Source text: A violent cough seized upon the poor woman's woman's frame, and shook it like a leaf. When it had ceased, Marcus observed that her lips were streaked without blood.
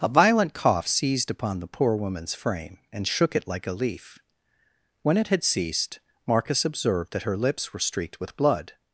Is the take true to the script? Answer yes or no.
no